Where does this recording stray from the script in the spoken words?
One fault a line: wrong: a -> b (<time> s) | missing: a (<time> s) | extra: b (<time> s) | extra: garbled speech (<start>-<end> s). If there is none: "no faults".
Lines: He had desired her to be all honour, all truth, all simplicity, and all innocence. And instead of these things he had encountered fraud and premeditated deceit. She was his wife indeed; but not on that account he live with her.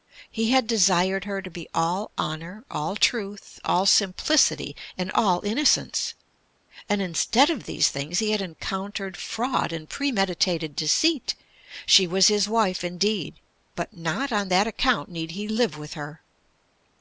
extra: need (15.1 s)